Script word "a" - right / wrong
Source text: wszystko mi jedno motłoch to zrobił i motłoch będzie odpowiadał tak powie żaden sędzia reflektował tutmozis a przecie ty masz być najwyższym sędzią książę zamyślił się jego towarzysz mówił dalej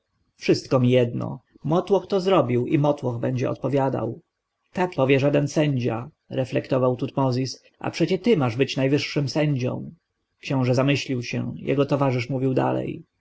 right